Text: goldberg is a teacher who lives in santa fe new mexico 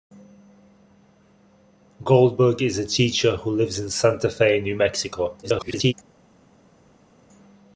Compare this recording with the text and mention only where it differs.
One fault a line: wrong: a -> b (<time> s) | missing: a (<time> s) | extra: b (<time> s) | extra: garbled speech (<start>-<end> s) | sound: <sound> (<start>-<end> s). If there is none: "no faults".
extra: garbled speech (5.4-5.9 s)